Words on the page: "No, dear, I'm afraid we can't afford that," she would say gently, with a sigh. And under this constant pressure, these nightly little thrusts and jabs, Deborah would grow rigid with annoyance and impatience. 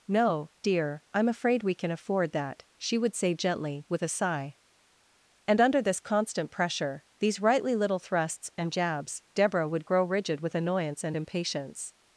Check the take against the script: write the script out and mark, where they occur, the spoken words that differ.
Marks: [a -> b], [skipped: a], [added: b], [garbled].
"No, dear, I'm afraid we [can't -> can] afford that," she would say gently, with a sigh. And under this constant pressure, these [nightly -> rightly] little thrusts and jabs, Deborah would grow rigid with annoyance and impatience.